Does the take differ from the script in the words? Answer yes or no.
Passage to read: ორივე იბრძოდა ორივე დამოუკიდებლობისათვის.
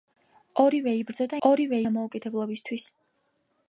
no